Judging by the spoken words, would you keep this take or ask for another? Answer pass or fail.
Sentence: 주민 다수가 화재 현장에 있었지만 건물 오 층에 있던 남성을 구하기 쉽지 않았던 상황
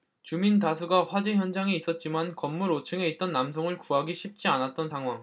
pass